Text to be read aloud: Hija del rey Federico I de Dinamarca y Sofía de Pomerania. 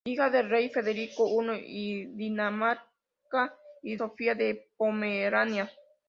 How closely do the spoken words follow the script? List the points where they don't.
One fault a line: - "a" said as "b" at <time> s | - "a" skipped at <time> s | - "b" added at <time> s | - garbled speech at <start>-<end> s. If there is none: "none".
none